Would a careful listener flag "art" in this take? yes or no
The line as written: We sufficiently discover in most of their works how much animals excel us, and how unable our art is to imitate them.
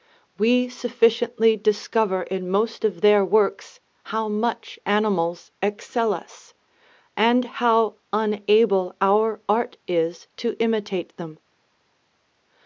no